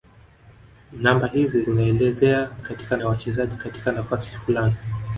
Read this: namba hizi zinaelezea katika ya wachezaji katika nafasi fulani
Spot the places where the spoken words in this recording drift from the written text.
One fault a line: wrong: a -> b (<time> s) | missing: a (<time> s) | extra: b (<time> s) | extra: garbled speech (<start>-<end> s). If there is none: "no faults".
no faults